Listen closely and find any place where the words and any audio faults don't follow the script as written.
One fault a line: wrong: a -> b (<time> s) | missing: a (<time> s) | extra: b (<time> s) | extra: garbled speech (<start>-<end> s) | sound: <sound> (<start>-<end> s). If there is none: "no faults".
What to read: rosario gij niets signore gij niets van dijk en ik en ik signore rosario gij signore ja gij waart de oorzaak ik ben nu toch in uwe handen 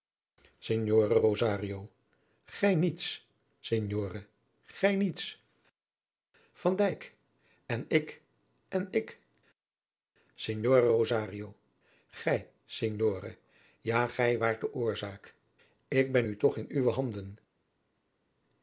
no faults